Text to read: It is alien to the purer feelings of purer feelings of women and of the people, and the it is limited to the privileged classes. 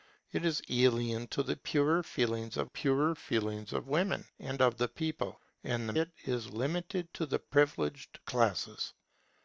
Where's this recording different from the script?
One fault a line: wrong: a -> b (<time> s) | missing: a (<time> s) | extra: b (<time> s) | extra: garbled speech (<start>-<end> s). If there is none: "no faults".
no faults